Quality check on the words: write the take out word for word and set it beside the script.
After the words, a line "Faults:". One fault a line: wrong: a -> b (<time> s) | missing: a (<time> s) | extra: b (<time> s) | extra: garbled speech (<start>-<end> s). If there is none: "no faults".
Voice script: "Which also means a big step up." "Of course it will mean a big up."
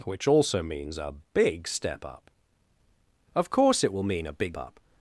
"Which also means a big step up." "Of course it will mean a big up."
Faults:
no faults